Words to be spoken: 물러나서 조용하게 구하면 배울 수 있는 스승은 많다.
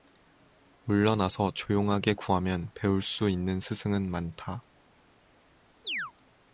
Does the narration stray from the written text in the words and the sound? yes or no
yes